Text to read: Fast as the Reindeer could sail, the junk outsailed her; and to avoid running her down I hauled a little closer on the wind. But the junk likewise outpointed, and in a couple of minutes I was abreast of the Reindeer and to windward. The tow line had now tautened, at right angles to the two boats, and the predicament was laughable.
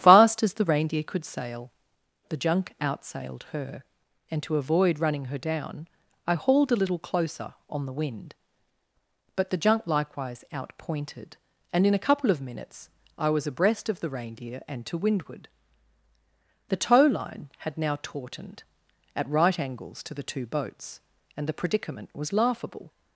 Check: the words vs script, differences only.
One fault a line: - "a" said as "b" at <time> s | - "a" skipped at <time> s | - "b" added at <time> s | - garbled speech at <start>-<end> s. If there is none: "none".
none